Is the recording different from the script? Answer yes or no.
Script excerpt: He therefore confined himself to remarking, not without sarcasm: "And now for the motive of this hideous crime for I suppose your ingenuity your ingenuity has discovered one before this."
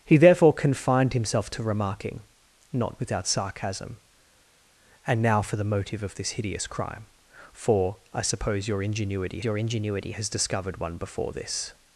no